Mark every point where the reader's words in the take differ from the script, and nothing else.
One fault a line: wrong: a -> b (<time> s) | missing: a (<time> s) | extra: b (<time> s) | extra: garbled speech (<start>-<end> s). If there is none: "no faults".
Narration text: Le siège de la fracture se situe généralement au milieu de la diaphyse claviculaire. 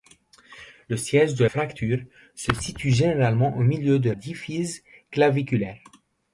missing: la (1.4 s)
missing: la (4.1 s)